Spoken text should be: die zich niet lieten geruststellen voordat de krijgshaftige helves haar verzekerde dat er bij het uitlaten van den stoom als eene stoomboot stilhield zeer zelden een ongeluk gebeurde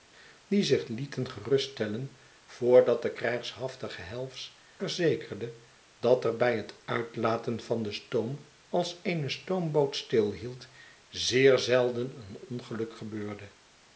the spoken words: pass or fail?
fail